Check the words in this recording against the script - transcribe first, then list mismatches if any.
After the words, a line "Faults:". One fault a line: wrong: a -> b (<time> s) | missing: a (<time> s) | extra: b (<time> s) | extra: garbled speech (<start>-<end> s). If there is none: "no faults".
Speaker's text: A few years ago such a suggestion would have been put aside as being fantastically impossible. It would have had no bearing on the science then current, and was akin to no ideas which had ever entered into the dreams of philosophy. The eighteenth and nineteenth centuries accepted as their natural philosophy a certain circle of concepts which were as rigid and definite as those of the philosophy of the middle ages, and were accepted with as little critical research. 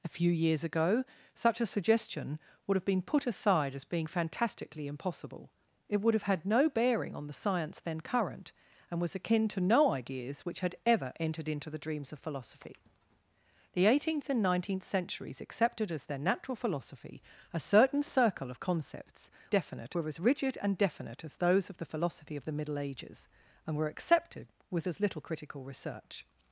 A few years ago such a suggestion would have been put aside as being fantastically impossible. It would have had no bearing on the science then current, and was akin to no ideas which had ever entered into the dreams of philosophy. The eighteenth and nineteenth centuries accepted as their natural philosophy a certain circle of concepts definite were as rigid and definite as those of the philosophy of the middle ages, and were accepted with as little critical research.
Faults:
wrong: which -> definite (19.5 s)